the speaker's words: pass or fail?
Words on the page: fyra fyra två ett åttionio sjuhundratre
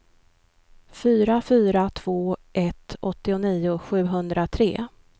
pass